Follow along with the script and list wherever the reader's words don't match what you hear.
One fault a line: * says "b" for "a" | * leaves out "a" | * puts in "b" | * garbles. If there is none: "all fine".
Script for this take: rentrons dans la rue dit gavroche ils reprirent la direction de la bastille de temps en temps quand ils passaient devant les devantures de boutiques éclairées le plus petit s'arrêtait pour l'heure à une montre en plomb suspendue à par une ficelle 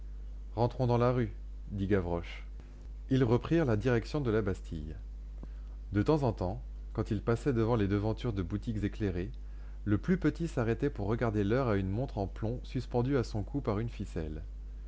* puts in "regarder"
* puts in "son cou"